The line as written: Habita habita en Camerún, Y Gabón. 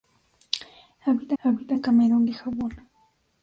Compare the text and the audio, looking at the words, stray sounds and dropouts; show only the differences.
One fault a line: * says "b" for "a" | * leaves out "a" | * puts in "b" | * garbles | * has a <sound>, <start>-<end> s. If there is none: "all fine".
all fine